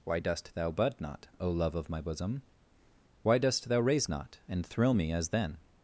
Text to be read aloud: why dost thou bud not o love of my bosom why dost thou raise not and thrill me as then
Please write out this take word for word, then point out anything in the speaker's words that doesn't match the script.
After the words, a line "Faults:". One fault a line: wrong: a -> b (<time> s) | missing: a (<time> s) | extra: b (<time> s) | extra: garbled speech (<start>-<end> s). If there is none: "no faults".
why dost thou bud not o love of my bosom why dost thou raise not and thrill me as then
Faults:
no faults